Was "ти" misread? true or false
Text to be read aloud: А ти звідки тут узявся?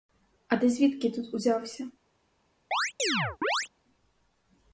false